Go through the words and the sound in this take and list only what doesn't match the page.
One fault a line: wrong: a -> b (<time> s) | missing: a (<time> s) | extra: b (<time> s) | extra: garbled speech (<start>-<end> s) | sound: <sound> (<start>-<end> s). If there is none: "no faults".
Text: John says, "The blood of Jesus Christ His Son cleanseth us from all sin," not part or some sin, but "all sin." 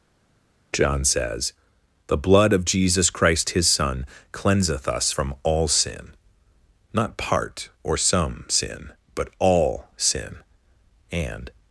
extra: And (11.1 s)